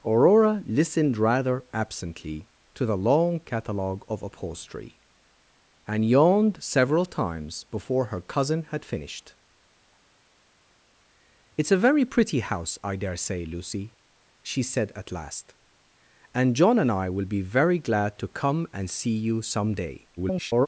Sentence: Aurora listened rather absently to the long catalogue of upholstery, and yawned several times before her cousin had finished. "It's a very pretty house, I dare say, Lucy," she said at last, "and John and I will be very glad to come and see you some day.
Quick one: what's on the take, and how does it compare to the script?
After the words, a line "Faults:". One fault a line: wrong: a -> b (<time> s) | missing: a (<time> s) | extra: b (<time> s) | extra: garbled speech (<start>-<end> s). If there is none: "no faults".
Aurora listened rather absently to the long catalogue of upholstery, and yawned several times before her cousin had finished. "It's a very pretty house, I dare say, Lucy," she said at last, "and John and I will be very glad to come and see you some day. [garbled]
Faults:
extra: garbled speech (20.2-20.7 s)